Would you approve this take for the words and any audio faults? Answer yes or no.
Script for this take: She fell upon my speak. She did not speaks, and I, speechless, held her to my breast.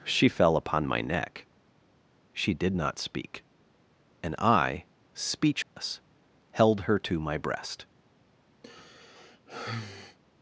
no